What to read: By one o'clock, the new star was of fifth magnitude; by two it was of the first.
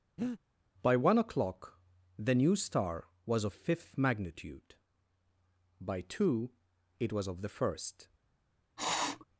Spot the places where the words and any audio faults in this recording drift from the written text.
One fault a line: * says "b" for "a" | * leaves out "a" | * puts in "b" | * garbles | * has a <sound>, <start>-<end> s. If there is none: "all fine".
* has a breath, 0.2-0.4 s
* has a sniff, 8.8-9.2 s